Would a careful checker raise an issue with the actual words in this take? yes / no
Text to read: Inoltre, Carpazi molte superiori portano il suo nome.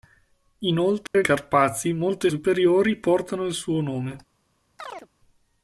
no